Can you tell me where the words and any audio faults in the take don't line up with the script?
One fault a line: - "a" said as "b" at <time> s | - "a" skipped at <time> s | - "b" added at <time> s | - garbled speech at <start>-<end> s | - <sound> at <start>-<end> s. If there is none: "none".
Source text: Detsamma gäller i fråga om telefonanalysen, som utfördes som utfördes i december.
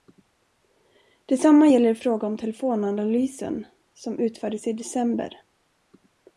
- "som utfördes" skipped at 4.7 s